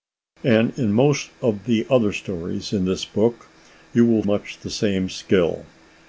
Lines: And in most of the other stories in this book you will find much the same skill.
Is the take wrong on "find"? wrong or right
wrong